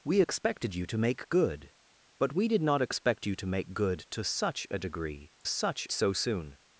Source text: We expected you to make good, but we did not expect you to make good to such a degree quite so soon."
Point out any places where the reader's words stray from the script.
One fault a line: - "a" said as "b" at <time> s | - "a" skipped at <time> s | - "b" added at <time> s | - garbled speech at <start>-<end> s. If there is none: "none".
- "quite" said as "such" at 5.4 s